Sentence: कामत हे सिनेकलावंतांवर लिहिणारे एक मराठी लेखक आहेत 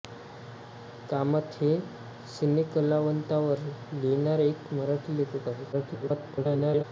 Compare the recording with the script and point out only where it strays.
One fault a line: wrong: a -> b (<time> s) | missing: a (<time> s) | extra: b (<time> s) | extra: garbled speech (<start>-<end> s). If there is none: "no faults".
extra: garbled speech (5.7-6.8 s)